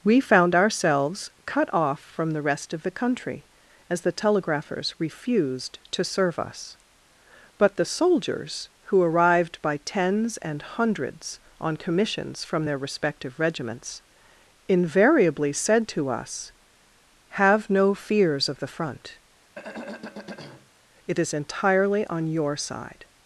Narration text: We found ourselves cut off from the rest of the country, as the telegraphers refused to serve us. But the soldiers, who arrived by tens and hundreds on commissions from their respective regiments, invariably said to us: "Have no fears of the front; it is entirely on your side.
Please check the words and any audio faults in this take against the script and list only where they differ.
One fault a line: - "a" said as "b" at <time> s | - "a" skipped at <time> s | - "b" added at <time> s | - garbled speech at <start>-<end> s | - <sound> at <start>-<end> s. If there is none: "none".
- throat clearing at 19.5-20.7 s